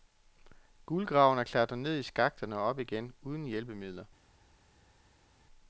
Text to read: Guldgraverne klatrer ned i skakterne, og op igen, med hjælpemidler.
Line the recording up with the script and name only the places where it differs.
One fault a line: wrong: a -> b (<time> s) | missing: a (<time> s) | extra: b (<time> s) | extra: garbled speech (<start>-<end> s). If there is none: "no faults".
wrong: med -> uden (3.2 s)